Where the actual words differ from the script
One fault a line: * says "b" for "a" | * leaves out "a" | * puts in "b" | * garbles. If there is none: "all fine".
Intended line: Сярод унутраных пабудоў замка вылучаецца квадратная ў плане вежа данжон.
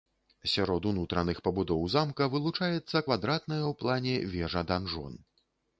all fine